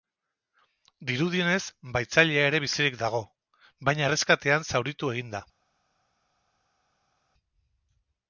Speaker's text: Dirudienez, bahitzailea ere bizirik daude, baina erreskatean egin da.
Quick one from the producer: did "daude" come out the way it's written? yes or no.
no